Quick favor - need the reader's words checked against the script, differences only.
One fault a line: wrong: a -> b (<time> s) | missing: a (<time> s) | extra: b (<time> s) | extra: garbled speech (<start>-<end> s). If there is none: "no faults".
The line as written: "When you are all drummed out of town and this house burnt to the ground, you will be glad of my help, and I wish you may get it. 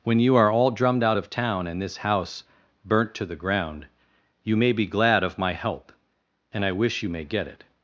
wrong: will -> may (4.6 s)